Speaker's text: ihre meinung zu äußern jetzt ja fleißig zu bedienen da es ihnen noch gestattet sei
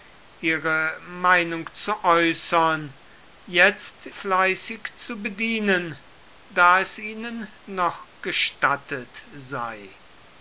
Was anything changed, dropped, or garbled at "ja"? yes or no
yes